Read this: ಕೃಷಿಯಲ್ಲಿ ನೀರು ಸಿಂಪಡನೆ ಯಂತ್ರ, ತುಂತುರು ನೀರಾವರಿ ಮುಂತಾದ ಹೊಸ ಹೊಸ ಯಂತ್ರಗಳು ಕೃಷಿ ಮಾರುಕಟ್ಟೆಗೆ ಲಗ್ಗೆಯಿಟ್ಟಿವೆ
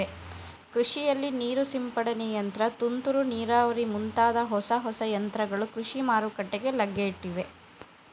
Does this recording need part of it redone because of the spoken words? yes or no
no